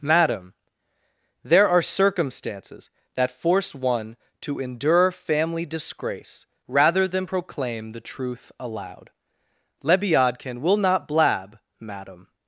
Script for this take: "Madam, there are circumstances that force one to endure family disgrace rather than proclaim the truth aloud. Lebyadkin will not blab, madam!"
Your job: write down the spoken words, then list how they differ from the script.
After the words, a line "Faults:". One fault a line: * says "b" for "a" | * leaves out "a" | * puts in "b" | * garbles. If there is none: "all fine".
"Madam, there are circumstances that force one to endure family disgrace rather than proclaim the truth aloud. Lebyadkin will not blab, madam!"
Faults:
all fine